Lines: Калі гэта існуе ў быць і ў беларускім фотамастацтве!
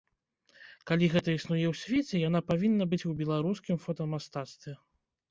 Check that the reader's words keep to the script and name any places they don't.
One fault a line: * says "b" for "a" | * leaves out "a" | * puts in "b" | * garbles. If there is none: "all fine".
* puts in "свеце яна павінна"